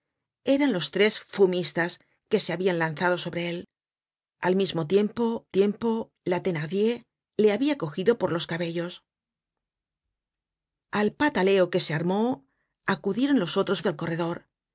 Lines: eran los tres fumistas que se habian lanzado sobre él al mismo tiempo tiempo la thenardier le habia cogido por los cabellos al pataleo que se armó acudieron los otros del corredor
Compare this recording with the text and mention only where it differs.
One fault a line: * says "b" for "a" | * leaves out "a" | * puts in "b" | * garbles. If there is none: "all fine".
all fine